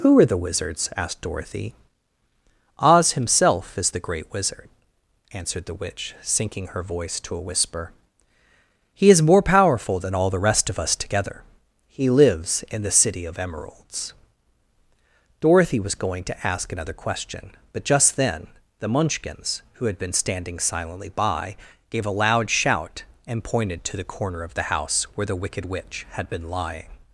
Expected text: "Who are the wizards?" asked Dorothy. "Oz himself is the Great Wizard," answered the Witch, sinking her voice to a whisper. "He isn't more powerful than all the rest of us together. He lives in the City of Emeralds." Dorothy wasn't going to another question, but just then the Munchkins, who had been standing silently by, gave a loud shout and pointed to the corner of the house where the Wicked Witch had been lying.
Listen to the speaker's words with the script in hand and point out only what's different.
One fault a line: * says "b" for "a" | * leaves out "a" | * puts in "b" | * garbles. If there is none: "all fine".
* says "is" for "isn't"
* says "was" for "wasn't"
* puts in "ask"